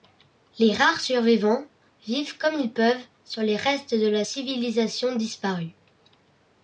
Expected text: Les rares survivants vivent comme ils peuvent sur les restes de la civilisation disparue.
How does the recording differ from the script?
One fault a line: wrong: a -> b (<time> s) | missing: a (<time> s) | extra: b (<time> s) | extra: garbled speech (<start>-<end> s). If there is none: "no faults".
no faults